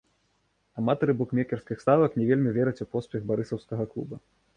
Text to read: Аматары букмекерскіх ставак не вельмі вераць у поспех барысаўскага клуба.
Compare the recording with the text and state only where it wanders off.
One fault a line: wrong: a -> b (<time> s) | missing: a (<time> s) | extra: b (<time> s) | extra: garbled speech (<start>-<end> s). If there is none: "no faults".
no faults